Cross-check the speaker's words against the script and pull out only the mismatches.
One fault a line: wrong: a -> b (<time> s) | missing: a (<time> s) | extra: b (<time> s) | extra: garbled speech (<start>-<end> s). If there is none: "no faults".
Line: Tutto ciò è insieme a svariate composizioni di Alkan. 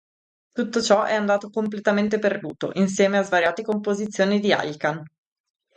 extra: andato completamente perduto (1.1 s)